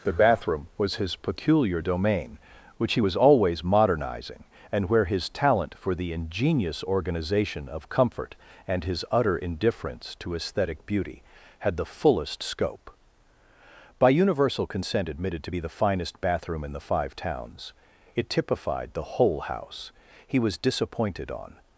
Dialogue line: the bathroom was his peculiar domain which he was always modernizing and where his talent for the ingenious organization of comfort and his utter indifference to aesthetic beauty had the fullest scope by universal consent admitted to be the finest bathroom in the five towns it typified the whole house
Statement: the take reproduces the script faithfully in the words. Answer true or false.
false